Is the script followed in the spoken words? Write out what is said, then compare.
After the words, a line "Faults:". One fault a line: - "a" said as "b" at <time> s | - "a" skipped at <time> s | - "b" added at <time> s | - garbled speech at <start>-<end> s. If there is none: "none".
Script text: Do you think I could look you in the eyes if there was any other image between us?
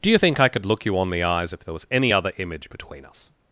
Do you think I could look you on the eyes if there was any other image between us?
Faults:
- "in" said as "on" at 1.0 s